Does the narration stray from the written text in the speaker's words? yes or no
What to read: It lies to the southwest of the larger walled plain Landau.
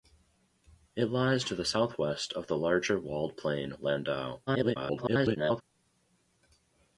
yes